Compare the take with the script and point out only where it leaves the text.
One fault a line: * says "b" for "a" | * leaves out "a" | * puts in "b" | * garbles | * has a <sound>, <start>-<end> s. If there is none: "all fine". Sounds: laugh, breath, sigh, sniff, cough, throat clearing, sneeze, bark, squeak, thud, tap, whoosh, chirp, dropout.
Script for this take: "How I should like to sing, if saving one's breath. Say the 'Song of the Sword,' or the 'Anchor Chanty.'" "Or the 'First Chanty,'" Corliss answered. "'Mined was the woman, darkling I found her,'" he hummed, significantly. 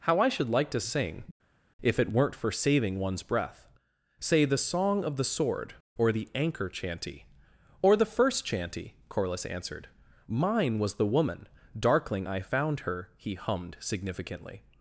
* puts in "it weren't for"
* says "Mine" for "Mined"